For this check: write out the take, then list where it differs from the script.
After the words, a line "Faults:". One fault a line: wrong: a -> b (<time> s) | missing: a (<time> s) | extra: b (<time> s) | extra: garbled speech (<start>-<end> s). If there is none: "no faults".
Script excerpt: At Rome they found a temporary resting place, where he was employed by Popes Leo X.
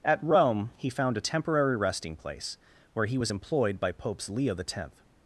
At Rome he found a temporary resting place, where he was employed by Popes Leo X.
Faults:
wrong: they -> he (0.8 s)